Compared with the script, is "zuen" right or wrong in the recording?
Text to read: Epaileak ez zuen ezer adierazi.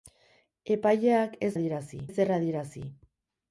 wrong